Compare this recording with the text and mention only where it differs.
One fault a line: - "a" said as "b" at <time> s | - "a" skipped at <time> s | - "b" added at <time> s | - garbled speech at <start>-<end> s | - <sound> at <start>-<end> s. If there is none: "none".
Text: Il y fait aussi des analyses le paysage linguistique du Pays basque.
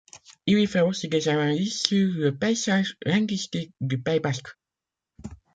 - "sur" added at 1.8 s